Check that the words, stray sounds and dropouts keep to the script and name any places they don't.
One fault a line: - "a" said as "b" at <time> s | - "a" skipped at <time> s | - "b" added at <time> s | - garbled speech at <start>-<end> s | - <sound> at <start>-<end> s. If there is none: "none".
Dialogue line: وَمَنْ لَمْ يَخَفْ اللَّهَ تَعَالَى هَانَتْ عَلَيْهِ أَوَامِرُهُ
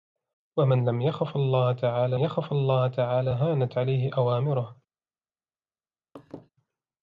- "يَخَفْ اللَّهَ تَعَالَى" added at 2.2 s
- laugh at 6.2-6.5 s